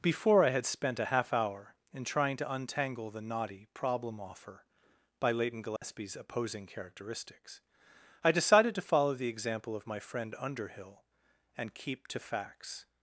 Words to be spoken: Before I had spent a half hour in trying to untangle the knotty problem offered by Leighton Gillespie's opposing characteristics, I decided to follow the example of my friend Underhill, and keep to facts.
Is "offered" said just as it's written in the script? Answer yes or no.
no